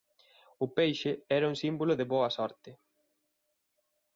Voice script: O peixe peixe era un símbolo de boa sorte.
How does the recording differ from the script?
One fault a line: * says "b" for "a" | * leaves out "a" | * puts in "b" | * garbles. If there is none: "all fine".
* leaves out "peixe"